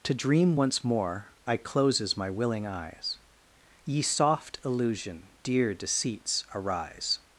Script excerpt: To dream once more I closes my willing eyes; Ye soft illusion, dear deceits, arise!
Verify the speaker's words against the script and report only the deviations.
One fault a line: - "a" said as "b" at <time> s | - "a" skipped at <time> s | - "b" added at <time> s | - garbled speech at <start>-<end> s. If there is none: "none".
none